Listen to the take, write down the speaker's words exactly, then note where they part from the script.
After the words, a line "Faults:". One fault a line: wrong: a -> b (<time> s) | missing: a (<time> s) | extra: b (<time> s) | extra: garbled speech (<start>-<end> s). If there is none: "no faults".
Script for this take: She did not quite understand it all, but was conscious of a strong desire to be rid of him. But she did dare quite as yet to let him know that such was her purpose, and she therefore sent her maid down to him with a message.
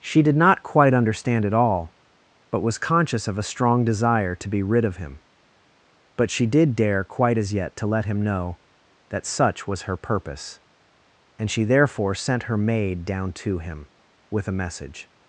She did not quite understand it all, but was conscious of a strong desire to be rid of him. But she did dare quite as yet to let him know that such was her purpose, and she therefore sent her maid down to him with a message.
Faults:
no faults